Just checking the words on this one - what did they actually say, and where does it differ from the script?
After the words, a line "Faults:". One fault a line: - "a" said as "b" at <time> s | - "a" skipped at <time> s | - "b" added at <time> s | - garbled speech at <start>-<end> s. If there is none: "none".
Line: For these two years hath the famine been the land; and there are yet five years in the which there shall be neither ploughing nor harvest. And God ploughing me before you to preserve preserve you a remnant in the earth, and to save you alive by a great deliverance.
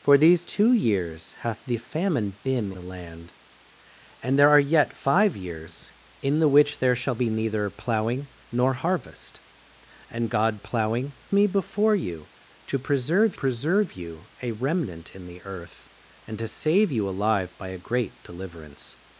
For these two years hath the famine been the land; and there are yet five years in the which there shall be neither ploughing nor harvest. And God ploughing me before you to preserve preserve you a remnant in the earth, and to save you alive by a great deliverance.
Faults:
none